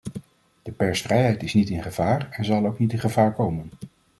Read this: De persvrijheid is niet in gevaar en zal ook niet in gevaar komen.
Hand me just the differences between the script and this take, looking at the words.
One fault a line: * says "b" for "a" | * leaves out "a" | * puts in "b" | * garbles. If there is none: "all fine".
all fine